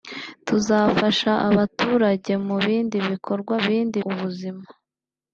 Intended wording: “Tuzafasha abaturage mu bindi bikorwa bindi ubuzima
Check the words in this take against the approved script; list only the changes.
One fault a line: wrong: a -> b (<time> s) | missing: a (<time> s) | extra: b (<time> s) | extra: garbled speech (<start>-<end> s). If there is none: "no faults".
no faults